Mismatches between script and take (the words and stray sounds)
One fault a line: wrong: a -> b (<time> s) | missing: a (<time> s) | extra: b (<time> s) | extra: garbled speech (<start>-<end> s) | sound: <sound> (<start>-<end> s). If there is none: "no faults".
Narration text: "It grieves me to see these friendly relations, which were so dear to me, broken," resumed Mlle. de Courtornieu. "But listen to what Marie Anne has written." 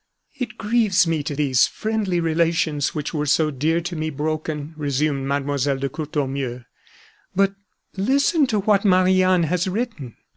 missing: see (1.4 s)